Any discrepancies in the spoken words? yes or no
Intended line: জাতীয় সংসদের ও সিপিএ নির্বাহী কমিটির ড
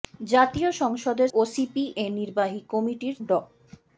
no